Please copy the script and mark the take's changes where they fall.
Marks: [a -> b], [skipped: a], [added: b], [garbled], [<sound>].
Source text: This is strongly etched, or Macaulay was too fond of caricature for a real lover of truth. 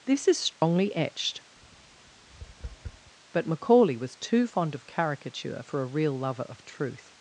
This is strongly [dropout] etched, [tap] [or -> but] Macaulay was too fond of caricature for a real lover of truth.